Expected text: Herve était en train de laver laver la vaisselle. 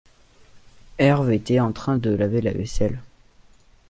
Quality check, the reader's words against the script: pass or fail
fail